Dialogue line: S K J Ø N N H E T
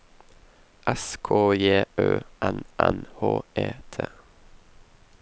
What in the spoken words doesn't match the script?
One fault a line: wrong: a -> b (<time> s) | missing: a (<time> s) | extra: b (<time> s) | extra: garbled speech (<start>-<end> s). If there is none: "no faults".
no faults